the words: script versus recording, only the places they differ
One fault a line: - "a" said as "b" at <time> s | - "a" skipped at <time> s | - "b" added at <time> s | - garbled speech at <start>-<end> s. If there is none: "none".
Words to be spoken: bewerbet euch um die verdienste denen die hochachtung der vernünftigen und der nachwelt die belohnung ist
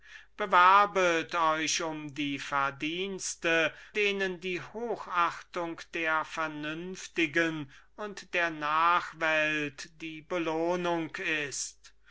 none